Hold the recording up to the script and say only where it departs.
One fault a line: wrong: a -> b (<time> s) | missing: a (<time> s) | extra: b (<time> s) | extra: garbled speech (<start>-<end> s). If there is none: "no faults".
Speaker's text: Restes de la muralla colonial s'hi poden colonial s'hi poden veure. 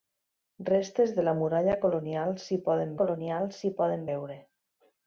no faults